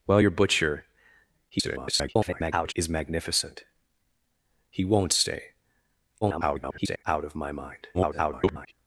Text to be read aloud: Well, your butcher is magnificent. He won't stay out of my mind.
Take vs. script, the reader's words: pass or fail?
fail